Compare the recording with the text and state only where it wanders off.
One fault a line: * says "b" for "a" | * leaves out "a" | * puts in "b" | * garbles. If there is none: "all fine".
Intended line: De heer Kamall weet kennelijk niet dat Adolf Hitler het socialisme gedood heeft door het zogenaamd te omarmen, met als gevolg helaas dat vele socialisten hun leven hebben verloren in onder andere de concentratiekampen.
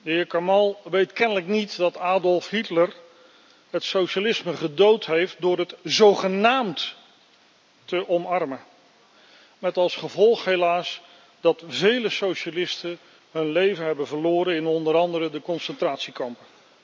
all fine